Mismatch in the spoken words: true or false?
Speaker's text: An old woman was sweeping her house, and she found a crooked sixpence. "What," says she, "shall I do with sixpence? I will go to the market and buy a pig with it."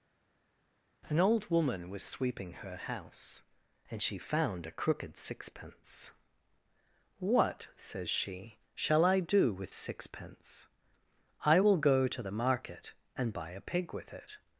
false